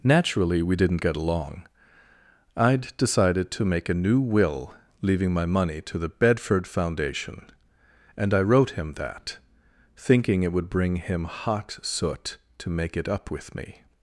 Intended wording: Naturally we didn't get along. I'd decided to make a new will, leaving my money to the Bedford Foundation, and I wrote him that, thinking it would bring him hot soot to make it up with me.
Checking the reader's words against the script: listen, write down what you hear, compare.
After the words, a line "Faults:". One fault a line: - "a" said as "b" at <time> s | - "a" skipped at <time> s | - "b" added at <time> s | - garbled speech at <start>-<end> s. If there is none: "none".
Naturally we didn't get along. I'd decided to make a new will, leaving my money to the Bedford Foundation, and I wrote him that, thinking it would bring him hot soot to make it up with me.
Faults:
none